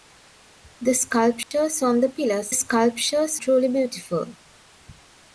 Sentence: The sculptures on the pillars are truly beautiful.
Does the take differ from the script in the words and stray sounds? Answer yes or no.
yes